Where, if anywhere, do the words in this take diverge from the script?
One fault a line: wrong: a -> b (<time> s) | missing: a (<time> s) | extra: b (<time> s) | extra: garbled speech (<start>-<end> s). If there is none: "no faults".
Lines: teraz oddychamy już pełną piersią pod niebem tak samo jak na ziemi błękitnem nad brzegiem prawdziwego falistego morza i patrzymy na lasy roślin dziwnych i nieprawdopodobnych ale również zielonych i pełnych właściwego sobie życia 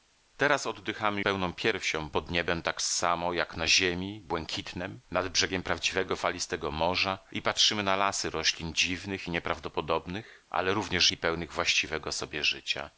missing: już (1.2 s)
missing: zielonych (11.1 s)